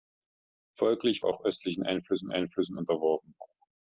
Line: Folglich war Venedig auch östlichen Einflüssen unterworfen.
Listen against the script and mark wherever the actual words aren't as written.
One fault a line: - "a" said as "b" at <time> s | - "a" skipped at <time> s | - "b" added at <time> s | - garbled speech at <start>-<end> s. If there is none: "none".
- "war Venedig" skipped at 1.2 s
- "Einflüssen" added at 2.3 s